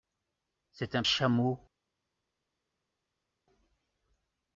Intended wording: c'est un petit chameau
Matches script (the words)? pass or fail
fail